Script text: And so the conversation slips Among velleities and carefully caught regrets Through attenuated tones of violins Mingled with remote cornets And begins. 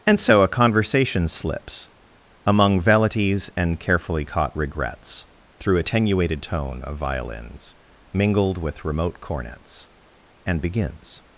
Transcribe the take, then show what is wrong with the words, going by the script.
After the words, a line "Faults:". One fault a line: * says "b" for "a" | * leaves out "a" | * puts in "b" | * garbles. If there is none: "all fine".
And so a conversation slips Among velleities and carefully caught regrets Through attenuated tone of violins Mingled with remote cornets And begins.
Faults:
* says "a" for "the"
* says "tone" for "tones"